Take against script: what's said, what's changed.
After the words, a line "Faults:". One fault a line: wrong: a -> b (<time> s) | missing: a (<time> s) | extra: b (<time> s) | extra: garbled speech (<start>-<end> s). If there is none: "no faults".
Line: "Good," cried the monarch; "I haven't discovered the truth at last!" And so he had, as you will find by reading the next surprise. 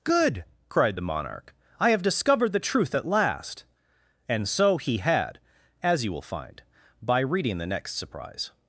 "Good," cried the monarch; "I have discovered the truth at last!" And so he had, as you will find by reading the next surprise.
Faults:
wrong: haven't -> have (1.9 s)